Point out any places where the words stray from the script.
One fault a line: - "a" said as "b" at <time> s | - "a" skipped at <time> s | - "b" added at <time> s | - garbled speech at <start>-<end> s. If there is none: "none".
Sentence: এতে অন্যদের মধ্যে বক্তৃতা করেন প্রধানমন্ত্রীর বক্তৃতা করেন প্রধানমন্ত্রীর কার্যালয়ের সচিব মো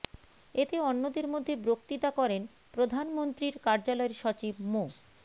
- "বক্তৃতা করেন প্রধানমন্ত্রীর" skipped at 3.5 s